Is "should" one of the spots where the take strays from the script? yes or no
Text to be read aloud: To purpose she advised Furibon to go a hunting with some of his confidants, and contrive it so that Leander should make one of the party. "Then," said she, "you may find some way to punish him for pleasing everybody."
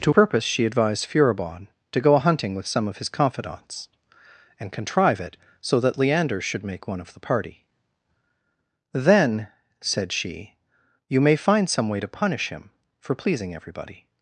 no